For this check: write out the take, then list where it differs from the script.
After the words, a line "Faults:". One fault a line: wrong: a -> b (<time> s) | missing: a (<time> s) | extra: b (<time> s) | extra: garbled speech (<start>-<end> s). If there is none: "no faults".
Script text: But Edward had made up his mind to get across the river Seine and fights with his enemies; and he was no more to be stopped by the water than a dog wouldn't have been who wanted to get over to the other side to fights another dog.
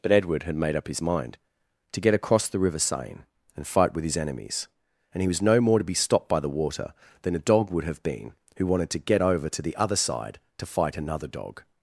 But Edward had made up his mind to get across the river Seine and fight with his enemies; and he was no more to be stopped by the water than a dog would have been who wanted to get over to the other side to fight another dog.
Faults:
wrong: fights -> fight (3.7 s)
wrong: wouldn't -> would (7.7 s)
wrong: fights -> fight (10.7 s)